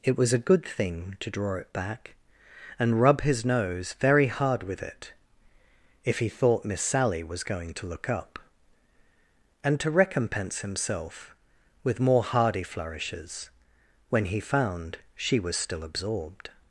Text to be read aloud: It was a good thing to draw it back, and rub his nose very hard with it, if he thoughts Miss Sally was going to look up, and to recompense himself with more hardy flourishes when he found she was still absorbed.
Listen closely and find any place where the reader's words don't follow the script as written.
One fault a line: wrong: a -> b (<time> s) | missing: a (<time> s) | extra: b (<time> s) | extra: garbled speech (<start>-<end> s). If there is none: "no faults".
wrong: thoughts -> thought (6.3 s)